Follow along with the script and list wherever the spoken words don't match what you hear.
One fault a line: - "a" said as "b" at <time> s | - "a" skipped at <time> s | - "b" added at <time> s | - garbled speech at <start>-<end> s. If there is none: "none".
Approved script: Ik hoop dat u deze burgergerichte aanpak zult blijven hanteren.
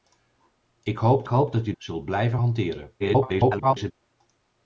- "hoop" added at 1.3 s
- "deze burgergerichte aanpak" skipped at 1.7 s
- garbled speech at 3.0-3.9 s